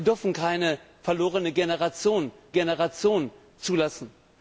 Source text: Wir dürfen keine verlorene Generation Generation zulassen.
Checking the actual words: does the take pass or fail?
pass